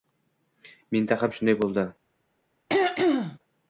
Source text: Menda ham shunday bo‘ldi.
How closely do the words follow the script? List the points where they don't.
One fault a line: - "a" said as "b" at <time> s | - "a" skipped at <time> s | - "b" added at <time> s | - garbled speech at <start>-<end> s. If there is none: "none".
none